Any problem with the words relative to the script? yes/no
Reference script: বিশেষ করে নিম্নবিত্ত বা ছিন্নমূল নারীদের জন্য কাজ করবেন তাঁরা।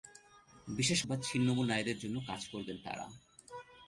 yes